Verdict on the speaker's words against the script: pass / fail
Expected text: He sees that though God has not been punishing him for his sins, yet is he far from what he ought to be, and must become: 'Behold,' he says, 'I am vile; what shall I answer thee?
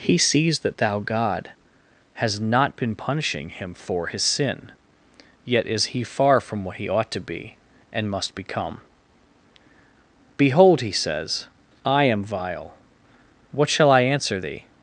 fail